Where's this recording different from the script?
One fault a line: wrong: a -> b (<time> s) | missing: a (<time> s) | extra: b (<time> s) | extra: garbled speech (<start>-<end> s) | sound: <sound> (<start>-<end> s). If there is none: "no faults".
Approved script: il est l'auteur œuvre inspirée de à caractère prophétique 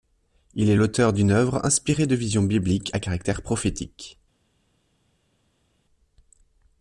extra: d'une (1.1 s)
extra: visions bibliques (2.1 s)